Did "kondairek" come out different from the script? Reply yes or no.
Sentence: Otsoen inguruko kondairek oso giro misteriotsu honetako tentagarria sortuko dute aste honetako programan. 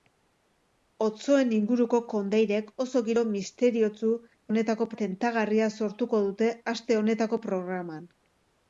no